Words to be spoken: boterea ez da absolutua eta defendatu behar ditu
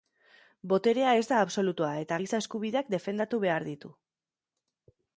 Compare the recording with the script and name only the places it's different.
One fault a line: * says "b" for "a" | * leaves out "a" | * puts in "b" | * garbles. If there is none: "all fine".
* puts in "giza eskubideak"